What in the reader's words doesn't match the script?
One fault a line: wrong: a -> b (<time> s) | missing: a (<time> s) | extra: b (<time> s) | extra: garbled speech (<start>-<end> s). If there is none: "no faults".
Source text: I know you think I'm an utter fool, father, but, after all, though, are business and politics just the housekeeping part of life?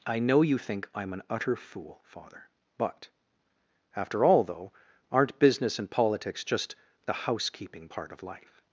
wrong: are -> aren't (5.1 s)